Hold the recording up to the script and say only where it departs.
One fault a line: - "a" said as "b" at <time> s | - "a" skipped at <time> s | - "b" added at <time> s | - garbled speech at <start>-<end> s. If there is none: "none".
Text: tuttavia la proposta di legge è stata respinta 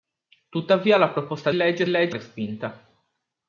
- "di" skipped at 1.5 s
- "stata" said as "legge" at 1.9 s